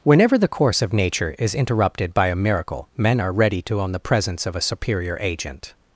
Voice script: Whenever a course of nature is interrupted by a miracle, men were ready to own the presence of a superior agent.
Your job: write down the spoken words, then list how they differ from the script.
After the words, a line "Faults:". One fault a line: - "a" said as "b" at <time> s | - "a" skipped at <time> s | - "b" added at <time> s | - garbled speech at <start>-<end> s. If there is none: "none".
Whenever the course of nature is interrupted by a miracle, men are ready to own the presence of a superior agent.
Faults:
- "a" said as "the" at 0.3 s
- "were" said as "are" at 3.2 s